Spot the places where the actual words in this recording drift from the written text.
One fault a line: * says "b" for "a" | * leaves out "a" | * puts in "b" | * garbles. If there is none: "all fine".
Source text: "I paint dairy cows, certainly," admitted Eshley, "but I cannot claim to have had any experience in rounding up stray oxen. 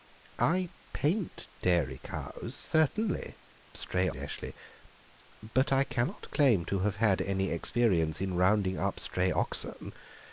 * says "stray" for "admitted"